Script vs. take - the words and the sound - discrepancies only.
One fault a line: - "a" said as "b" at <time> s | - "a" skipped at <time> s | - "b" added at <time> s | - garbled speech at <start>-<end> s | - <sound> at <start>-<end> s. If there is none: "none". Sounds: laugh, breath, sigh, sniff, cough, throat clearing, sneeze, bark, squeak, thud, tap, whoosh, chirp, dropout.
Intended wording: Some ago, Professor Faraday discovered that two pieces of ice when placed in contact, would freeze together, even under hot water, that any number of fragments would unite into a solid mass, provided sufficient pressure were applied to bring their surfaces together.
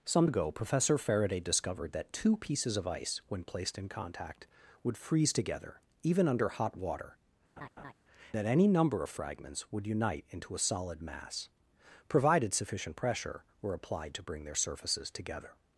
- laugh at 7.6-7.9 s